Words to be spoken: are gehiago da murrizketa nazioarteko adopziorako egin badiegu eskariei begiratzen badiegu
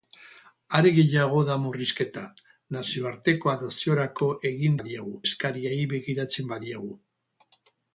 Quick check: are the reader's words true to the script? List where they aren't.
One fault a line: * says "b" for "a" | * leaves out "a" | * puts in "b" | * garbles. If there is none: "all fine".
all fine